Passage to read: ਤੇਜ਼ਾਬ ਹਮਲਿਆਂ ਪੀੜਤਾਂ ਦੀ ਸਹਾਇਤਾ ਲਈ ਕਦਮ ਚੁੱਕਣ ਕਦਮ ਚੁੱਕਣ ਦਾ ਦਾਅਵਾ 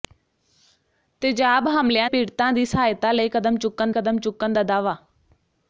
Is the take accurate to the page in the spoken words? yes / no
yes